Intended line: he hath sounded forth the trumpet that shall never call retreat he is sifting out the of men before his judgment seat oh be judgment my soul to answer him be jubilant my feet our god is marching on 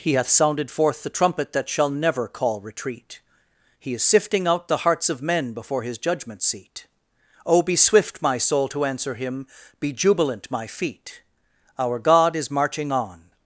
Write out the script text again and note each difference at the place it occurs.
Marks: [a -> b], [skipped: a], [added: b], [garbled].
he hath sounded forth the trumpet that shall never call retreat he is sifting out the [added: hearts] of men before his judgment seat oh be [judgment -> swift] my soul to answer him be jubilant my feet our god is marching on